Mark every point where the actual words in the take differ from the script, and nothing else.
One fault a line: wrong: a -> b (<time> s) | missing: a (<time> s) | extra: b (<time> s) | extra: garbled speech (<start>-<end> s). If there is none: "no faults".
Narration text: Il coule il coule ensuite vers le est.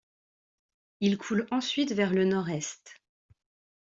missing: il coule (1.4 s)
extra: nord (2.2 s)